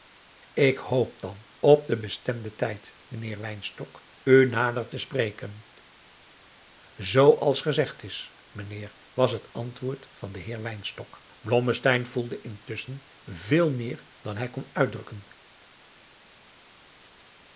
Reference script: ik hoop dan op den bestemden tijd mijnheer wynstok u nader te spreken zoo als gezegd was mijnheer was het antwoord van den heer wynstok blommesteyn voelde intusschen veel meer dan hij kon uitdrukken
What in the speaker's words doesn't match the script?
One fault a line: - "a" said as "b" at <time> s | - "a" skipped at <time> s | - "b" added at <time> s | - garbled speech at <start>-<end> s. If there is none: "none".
- "was" said as "is" at 8.0 s